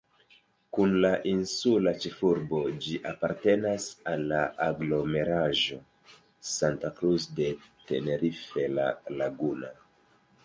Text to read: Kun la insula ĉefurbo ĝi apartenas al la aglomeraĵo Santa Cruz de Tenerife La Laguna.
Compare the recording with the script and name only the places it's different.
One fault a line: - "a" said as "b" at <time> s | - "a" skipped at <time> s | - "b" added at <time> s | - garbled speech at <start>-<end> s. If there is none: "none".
none